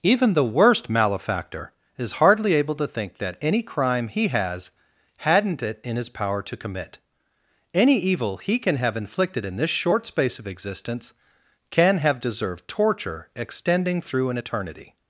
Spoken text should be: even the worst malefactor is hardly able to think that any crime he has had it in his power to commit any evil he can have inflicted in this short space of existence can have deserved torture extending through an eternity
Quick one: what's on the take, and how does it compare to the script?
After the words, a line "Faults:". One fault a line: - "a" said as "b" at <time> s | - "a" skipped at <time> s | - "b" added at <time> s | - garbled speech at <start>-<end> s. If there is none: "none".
even the worst malefactor is hardly able to think that any crime he has hadn't it in his power to commit any evil he can have inflicted in this short space of existence can have deserved torture extending through an eternity
Faults:
- "had" said as "hadn't" at 5.2 s